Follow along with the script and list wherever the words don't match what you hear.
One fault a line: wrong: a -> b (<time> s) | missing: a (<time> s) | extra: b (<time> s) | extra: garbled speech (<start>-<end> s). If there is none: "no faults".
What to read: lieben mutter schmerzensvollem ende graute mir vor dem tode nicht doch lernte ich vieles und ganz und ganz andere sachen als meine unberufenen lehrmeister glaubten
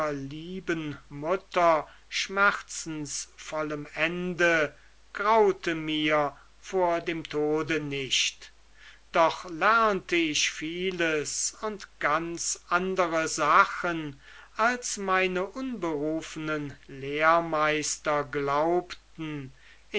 missing: und ganz (12.6 s)